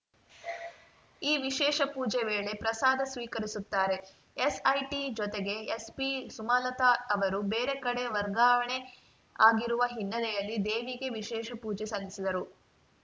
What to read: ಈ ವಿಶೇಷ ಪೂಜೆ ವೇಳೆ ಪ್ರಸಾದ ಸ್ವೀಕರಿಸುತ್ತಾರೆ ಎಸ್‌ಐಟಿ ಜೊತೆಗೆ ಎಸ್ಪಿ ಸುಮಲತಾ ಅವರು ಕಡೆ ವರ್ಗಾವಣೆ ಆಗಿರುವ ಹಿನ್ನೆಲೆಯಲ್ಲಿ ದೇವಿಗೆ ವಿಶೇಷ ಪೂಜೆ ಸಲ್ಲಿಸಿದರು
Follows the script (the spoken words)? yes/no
no